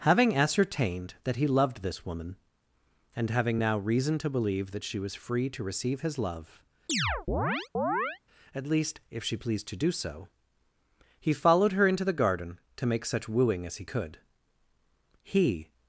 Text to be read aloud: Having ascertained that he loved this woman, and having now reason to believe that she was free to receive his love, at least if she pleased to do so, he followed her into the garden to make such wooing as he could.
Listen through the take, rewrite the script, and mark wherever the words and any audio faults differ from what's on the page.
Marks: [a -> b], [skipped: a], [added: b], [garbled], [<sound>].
Having ascertained that he loved this woman, and having now reason to believe that she was free to receive his love, [chirp] at least if she pleased to do so, he followed her into the garden to make such wooing as he could. [added: He]